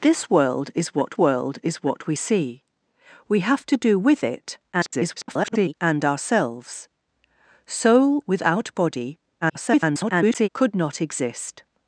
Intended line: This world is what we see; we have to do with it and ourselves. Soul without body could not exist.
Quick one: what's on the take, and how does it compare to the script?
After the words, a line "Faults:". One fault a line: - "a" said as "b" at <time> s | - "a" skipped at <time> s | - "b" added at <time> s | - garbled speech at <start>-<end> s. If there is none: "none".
This world is what world is what we see; we have to do with it [garbled] and ourselves. Soul without body [garbled] could not exist.
Faults:
- "world is what" added at 1.2 s
- garbled speech at 4.7-5.7 s
- garbled speech at 9.4-10.5 s